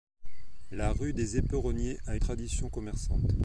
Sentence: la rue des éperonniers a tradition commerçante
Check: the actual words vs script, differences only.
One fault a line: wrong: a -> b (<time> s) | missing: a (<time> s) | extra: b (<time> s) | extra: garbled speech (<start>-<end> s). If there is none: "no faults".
no faults